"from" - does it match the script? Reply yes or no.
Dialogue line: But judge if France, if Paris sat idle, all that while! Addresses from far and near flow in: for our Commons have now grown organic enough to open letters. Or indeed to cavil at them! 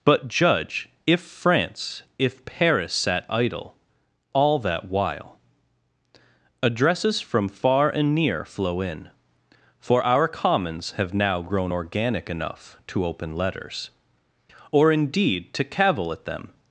yes